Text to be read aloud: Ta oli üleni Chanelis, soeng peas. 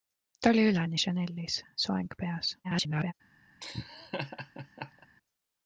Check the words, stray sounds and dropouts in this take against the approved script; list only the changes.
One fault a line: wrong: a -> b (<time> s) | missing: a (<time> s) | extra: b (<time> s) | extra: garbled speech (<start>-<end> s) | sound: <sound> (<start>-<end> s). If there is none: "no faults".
extra: garbled speech (2.6-3.1 s)
sound: laugh (3.6-5.1 s)